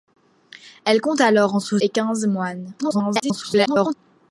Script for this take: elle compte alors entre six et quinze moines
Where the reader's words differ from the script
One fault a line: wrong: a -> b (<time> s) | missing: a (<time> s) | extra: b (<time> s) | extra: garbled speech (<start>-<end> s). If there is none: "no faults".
missing: six (1.8 s)
extra: garbled speech (2.8-3.9 s)